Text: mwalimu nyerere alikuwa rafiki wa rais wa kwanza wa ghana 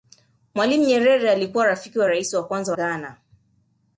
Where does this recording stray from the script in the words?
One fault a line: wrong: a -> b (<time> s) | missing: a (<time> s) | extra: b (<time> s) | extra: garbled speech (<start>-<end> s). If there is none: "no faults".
missing: wa (2.8 s)